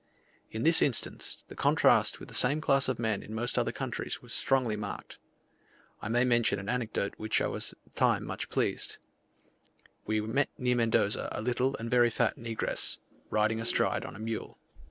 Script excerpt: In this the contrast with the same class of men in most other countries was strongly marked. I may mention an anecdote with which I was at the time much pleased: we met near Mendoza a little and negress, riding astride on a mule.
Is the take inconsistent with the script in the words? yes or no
yes